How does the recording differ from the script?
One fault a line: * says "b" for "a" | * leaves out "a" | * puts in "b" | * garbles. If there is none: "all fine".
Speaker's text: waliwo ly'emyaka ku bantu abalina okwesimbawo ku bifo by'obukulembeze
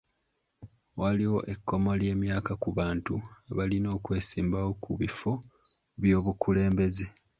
* puts in "ekkomo"